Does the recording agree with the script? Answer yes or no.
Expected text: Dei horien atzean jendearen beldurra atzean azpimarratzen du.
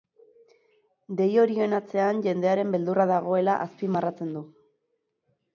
no